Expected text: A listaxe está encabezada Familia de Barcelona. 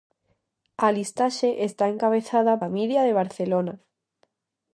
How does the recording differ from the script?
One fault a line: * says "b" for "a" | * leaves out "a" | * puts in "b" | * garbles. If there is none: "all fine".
all fine